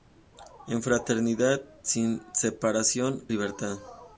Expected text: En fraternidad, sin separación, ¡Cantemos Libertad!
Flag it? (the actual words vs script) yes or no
yes